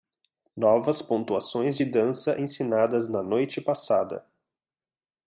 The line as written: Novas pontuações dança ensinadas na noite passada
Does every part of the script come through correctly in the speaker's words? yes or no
no